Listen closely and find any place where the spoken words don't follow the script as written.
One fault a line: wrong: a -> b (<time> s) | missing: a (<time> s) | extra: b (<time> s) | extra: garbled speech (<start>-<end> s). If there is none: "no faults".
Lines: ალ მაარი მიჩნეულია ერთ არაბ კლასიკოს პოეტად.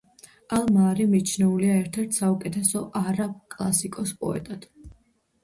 extra: ერთ საუკეთესო (2.0 s)